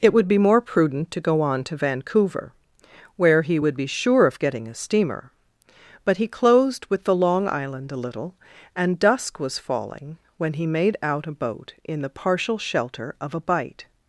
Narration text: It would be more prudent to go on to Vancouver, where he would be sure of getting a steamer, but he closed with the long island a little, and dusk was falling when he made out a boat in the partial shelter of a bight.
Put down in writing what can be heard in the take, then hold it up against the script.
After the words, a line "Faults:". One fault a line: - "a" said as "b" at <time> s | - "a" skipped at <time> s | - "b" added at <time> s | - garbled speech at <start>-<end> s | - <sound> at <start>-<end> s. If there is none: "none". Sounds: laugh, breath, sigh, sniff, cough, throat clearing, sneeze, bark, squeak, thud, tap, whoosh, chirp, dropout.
It would be more prudent to go on to Vancouver, where he would be sure of getting a steamer, but he closed with the long island a little, and dusk was falling when he made out a boat in the partial shelter of a bight.
Faults:
none